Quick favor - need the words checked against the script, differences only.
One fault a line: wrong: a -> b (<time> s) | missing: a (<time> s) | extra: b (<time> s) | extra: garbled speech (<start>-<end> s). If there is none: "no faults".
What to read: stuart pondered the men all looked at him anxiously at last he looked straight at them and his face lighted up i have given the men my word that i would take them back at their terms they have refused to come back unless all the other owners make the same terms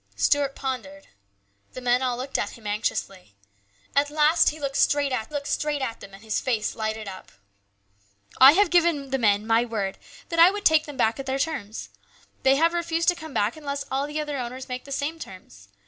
extra: looked straight at (5.3 s)